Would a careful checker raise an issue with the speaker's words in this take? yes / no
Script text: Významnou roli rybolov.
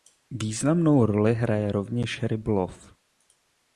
yes